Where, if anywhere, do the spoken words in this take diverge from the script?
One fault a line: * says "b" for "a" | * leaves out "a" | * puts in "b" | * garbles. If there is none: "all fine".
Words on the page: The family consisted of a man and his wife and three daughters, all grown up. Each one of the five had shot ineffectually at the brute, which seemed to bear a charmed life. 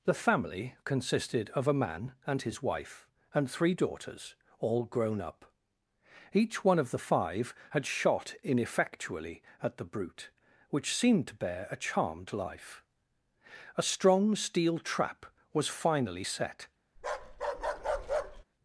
* puts in "A strong steel trap was finally set"